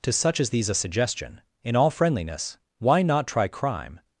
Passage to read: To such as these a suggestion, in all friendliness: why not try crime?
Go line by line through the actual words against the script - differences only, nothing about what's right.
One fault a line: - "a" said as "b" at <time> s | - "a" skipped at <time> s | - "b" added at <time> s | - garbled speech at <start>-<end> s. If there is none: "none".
none